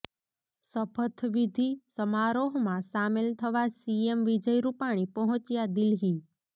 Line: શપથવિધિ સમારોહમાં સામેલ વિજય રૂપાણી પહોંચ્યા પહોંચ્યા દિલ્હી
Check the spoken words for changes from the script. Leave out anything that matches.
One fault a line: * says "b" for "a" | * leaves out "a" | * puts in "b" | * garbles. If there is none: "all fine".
* puts in "થવા સીએમ"
* leaves out "પહોંચ્યા"